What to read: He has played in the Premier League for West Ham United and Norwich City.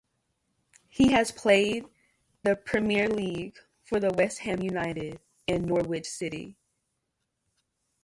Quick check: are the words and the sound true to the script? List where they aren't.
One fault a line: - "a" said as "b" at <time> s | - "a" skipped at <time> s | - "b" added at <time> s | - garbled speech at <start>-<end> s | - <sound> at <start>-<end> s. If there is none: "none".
- "in" skipped at 1.9 s